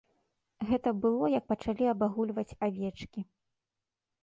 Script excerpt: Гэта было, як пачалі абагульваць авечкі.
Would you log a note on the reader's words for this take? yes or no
no